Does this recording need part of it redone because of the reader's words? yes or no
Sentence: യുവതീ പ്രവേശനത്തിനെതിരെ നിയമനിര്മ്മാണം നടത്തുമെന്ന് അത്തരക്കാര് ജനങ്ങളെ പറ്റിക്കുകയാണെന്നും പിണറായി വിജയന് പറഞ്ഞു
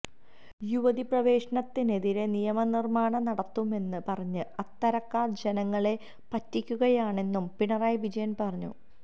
yes